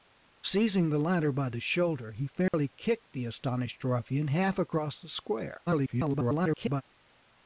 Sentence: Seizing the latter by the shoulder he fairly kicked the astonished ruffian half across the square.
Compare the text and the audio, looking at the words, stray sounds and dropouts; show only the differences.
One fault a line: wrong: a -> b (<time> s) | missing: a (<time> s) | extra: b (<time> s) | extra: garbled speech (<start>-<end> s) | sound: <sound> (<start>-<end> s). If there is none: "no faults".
sound: dropout (2.5-2.5 s)
extra: garbled speech (5.6-6.8 s)